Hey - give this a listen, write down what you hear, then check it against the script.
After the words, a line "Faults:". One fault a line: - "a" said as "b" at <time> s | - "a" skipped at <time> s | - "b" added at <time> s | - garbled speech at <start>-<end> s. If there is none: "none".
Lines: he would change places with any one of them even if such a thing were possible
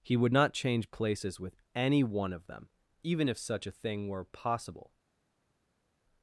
he would not change places with any one of them even if such a thing were possible
Faults:
- "not" added at 0.3 s